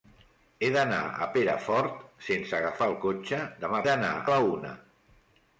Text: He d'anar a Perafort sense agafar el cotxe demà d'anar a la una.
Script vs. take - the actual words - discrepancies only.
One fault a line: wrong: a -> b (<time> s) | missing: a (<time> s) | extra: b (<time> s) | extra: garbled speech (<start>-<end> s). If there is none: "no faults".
no faults